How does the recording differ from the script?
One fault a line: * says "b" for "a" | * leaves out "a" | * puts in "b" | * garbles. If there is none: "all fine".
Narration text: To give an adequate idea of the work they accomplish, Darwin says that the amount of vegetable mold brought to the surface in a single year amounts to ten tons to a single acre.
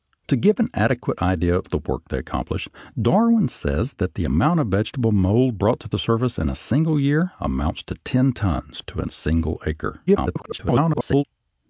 * garbles